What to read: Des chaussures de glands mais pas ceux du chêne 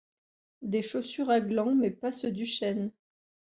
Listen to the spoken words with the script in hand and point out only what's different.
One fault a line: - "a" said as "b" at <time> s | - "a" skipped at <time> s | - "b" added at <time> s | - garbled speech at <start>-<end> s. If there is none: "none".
- "de" said as "à" at 1.3 s